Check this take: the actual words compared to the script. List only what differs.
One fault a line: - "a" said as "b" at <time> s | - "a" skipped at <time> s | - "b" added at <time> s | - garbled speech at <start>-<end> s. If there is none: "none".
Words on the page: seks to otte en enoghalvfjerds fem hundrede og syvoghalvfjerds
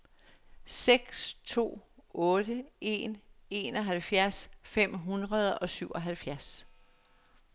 none